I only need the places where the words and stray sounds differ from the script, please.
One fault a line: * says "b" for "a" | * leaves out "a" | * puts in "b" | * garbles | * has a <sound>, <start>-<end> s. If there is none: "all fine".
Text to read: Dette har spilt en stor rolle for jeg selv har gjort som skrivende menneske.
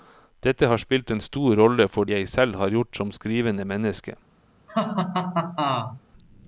* has a laugh, 4.7-6.0 s